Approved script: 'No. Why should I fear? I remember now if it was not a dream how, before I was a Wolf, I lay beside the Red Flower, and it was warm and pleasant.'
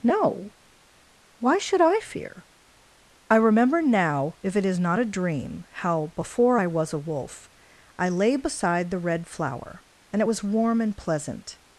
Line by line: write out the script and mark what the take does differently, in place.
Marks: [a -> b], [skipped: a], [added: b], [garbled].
'No. Why should I fear? I remember now if it [was -> is] not a dream how, before I was a Wolf, I lay beside the Red Flower, and it was warm and pleasant.'